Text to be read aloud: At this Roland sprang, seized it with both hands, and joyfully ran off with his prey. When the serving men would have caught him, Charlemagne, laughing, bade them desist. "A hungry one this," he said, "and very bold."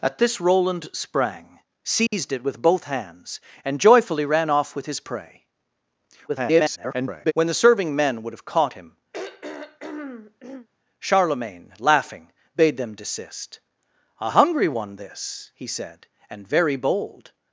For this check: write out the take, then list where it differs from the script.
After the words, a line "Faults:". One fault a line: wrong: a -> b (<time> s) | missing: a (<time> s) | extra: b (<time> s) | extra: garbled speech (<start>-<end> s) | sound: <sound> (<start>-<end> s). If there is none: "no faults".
At this Roland sprang, seized it with both hands, and joyfully ran off with his prey. [garbled] When the serving men would have caught him, Charlemagne, laughing, bade them desist. "A hungry one this," he said, "and very bold."
Faults:
sound: dropout (2.1-2.1 s)
extra: garbled speech (6.3-7.3 s)
sound: throat clearing (9.1-10.7 s)